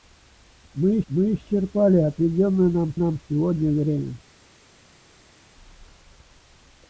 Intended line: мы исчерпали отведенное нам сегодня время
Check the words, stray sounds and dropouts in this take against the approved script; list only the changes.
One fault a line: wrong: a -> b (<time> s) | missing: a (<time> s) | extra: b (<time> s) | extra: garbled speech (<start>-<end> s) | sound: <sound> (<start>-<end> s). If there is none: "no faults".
extra: мы (1.1 s)
extra: нам (2.9 s)